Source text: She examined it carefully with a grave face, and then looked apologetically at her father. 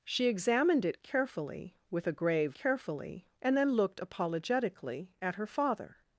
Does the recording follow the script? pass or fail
fail